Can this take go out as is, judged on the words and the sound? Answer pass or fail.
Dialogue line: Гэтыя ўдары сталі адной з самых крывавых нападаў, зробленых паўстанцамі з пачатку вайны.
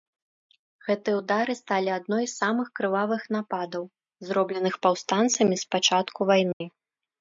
fail